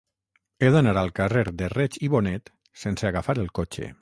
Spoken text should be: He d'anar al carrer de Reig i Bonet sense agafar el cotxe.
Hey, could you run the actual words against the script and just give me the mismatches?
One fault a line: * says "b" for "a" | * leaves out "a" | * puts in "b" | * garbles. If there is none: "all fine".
all fine